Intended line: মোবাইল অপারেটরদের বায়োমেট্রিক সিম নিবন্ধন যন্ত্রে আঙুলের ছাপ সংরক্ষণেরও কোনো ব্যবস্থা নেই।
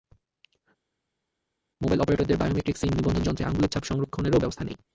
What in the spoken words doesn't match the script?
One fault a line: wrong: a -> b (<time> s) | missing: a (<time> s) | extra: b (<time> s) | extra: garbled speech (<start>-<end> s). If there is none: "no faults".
missing: কোনো (4.4 s)